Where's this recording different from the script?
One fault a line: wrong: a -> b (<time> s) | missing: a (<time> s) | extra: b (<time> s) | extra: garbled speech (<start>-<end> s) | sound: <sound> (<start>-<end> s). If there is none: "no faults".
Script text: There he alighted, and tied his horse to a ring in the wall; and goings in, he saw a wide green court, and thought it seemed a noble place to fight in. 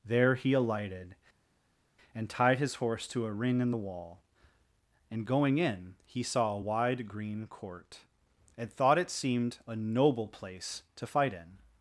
wrong: goings -> going (5.3 s)